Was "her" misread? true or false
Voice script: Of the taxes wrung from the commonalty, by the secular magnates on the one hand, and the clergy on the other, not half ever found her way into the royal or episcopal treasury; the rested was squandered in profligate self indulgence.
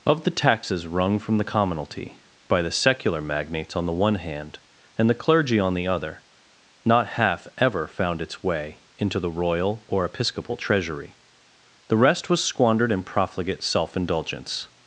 true